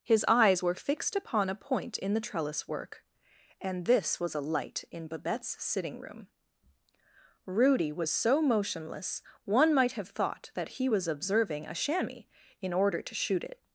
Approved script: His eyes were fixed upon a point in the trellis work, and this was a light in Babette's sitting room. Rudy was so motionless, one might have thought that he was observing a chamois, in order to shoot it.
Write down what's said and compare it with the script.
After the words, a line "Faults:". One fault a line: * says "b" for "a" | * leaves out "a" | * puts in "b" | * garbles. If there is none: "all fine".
His eyes were fixed upon a point in the trellis work, and this was a light in Babette's sitting room. Rudy was so motionless, one might have thought that he was observing a chamois, in order to shoot it.
Faults:
all fine